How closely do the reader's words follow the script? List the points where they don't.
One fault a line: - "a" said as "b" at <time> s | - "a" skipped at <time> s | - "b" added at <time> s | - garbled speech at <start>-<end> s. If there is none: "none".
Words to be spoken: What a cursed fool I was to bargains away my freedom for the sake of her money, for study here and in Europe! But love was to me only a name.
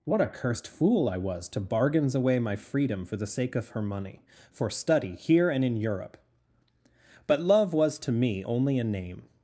none